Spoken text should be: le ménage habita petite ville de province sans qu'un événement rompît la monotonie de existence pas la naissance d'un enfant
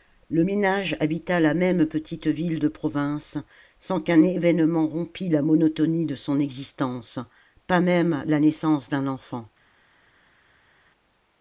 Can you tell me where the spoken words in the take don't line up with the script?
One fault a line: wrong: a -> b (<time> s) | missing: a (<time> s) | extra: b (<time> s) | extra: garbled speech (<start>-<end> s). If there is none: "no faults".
extra: la même (1.4 s)
extra: son (6.1 s)
extra: même (7.8 s)